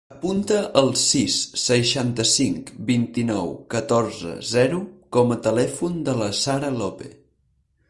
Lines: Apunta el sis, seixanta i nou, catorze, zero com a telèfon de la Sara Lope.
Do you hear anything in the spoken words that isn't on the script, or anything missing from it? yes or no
yes